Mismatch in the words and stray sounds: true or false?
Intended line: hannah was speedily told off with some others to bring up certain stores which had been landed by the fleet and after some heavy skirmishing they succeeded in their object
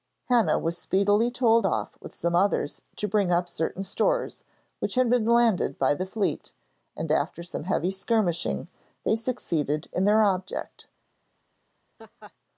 true